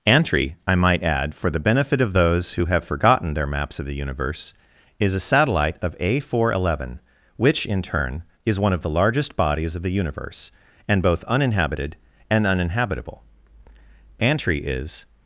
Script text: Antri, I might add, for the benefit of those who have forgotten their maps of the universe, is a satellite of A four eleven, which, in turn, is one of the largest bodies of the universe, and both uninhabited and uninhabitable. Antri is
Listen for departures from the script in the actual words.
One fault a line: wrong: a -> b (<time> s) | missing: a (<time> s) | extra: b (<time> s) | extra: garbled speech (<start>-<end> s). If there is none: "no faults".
no faults